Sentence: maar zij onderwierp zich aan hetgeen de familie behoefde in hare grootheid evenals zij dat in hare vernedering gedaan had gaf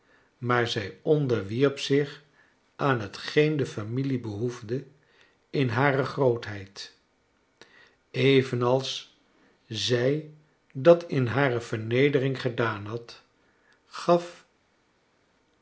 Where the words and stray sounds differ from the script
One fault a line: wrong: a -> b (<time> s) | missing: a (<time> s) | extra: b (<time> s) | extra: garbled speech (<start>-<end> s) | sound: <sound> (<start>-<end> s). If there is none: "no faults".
no faults